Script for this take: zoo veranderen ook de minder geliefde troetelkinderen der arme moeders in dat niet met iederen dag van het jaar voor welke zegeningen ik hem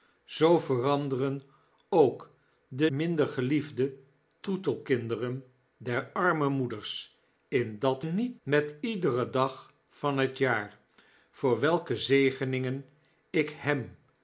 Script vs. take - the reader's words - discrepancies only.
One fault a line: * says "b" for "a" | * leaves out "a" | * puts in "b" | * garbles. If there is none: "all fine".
all fine